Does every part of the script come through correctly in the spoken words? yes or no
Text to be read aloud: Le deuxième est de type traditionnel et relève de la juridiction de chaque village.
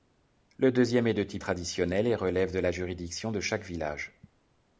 yes